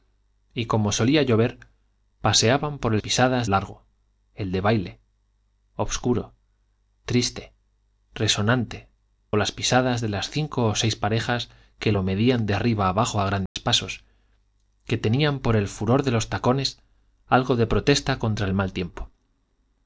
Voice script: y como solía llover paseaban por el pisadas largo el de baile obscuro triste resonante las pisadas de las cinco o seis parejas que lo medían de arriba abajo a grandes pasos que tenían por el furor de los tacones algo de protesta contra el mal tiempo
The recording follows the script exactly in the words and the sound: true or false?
false